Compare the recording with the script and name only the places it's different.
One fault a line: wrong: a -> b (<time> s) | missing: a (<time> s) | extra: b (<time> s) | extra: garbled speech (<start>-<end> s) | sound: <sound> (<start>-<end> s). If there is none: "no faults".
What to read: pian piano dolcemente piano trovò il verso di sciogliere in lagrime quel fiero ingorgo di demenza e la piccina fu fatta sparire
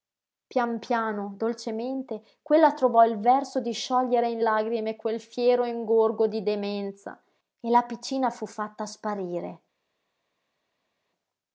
wrong: piano -> quella (2.4 s)